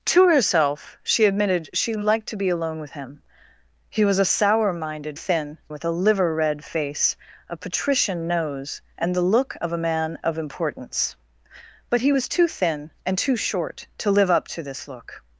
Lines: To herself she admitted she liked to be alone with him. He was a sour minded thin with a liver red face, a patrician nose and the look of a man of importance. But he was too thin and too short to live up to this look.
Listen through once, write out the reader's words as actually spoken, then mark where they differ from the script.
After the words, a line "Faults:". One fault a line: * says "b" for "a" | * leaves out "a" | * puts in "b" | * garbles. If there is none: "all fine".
To herself she admitted she liked to be alone with him. He was a sour minded thin with a liver red face, a patrician nose and the look of a man of importance. But he was too thin and too short to live up to this look.
Faults:
all fine